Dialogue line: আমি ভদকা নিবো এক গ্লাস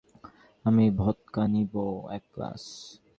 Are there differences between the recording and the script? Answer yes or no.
no